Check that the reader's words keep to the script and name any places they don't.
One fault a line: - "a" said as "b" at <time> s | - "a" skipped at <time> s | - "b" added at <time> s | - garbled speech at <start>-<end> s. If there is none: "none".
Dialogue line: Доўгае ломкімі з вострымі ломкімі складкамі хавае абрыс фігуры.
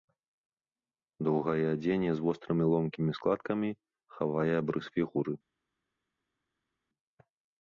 - "ломкімі" said as "адзенне" at 1.7 s